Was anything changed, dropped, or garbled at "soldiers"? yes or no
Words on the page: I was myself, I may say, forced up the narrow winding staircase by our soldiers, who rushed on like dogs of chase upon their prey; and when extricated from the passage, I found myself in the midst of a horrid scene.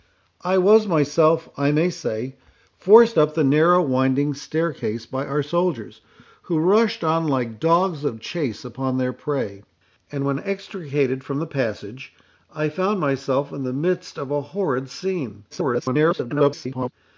no